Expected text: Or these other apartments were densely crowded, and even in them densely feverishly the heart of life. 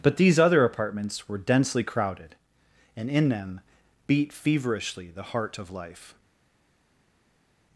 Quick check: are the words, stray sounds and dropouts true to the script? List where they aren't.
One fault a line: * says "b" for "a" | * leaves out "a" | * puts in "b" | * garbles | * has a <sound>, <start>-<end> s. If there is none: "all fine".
* says "But" for "Or"
* leaves out "even"
* says "beat" for "densely"